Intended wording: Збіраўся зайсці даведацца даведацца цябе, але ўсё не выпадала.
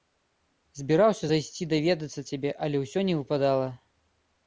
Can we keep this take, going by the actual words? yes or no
no